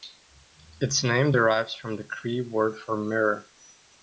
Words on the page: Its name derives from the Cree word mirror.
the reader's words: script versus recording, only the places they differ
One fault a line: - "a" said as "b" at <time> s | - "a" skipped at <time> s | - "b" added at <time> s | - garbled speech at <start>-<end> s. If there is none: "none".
- "for" added at 2.8 s